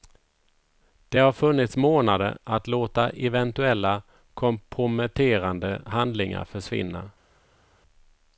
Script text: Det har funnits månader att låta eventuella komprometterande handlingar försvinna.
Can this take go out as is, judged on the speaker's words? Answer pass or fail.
pass